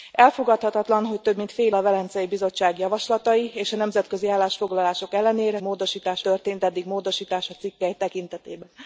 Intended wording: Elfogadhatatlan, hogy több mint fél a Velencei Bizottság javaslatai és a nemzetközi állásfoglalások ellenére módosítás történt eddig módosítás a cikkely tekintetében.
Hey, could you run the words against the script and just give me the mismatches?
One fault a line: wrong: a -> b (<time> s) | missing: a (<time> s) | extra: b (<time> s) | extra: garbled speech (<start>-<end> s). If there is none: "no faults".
no faults